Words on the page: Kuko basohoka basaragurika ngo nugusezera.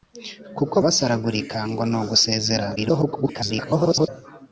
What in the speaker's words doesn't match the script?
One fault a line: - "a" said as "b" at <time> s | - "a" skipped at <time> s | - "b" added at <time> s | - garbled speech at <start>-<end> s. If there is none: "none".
- "basohoka" skipped at 0.8 s
- garbled speech at 2.8-4.1 s